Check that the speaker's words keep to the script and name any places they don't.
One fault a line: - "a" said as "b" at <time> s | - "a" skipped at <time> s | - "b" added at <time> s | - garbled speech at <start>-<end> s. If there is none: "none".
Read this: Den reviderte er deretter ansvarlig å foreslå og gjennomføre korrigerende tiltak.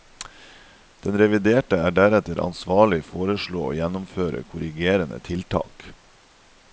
none